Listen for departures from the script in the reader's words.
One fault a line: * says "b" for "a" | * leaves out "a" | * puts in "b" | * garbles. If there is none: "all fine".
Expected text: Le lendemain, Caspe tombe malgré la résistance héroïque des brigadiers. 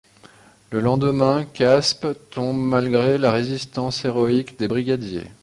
all fine